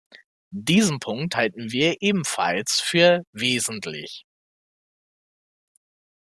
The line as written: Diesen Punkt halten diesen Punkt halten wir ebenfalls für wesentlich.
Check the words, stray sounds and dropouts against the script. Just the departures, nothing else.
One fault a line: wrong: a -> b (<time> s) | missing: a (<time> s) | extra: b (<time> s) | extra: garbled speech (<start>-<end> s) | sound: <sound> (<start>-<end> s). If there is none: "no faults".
missing: diesen Punkt halten (1.7 s)